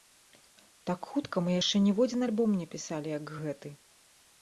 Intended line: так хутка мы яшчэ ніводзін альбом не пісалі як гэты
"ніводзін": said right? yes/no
yes